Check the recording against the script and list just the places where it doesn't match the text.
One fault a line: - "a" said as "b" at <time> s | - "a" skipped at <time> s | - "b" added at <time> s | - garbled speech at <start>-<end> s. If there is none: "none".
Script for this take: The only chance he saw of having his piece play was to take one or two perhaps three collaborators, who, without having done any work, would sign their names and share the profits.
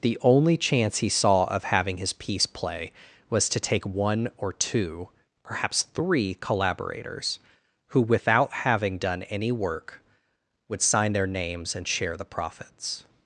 none